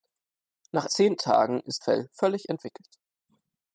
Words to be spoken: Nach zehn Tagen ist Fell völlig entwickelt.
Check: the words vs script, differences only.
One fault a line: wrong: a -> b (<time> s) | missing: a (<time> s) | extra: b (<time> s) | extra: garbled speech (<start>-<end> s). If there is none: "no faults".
no faults